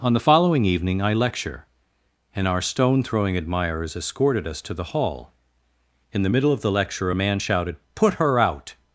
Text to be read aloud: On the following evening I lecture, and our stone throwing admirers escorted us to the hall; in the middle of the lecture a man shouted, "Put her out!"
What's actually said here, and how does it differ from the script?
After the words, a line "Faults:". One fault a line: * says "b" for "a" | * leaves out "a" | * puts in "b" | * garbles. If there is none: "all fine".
On the following evening I lecture, and our stone throwing admirers escorted us to the hall; in the middle of the lecture a man shouted, "Put her out!"
Faults:
all fine